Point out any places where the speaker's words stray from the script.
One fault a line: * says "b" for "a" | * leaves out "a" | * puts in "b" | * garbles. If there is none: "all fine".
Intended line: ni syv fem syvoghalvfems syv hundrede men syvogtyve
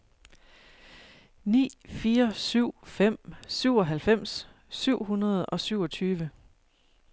* puts in "fire"
* says "og" for "men"